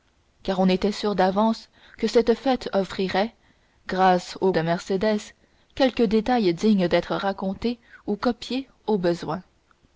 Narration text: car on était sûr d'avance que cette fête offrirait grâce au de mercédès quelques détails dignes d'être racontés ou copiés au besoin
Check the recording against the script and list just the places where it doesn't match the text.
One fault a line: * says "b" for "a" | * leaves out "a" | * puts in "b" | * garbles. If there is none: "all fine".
all fine